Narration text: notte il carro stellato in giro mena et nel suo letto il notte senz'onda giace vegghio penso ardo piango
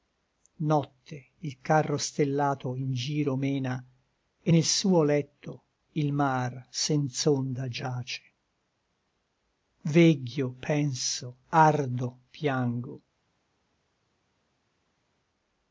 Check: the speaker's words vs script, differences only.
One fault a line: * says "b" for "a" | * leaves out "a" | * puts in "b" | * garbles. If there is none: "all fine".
* says "mar" for "notte"